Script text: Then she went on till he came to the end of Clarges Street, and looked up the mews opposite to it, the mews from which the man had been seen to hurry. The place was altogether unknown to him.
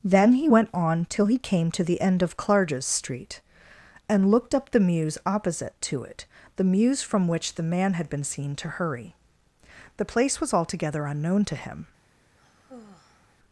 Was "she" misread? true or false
true